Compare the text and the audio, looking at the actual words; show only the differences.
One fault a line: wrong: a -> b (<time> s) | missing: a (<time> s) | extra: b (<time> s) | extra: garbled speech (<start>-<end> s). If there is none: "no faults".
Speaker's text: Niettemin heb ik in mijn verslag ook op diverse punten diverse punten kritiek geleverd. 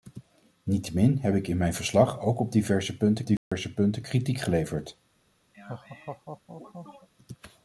no faults